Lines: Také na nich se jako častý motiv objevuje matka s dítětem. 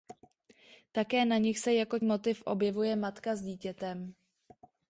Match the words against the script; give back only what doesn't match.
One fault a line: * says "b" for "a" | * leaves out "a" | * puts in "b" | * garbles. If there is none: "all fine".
* leaves out "častý"